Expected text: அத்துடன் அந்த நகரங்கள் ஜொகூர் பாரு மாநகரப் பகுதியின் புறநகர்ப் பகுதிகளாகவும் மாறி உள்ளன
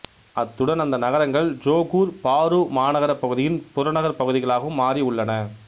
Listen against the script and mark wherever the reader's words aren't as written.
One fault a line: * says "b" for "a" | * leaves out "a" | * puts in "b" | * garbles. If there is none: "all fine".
all fine